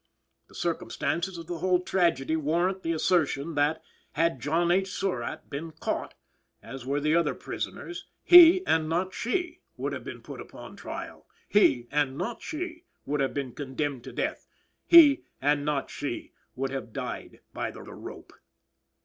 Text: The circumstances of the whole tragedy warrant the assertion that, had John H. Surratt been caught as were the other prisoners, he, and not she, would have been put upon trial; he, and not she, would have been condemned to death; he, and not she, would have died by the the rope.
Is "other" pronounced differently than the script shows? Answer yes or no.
no